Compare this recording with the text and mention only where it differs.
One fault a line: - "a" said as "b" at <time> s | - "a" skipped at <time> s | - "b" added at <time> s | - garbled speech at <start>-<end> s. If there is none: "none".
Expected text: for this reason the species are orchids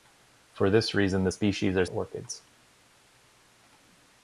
none